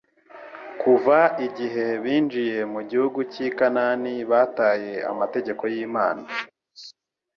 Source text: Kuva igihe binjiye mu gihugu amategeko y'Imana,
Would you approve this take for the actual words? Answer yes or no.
no